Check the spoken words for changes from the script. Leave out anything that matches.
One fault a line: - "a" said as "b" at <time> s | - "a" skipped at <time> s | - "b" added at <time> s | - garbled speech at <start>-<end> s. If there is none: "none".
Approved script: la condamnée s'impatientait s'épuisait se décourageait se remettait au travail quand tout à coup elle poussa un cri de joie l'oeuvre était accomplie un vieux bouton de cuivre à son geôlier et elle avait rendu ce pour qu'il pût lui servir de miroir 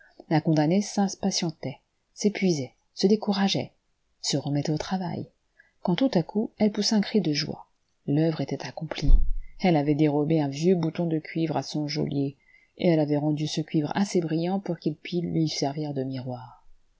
- "elle avait dérobé" added at 9.6 s
- "cuivre assez brillant" added at 13.6 s